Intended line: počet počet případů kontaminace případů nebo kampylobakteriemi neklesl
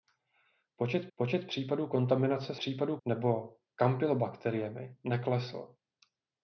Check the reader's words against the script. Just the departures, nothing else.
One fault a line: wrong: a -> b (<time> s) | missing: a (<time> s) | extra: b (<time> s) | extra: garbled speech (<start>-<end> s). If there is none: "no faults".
no faults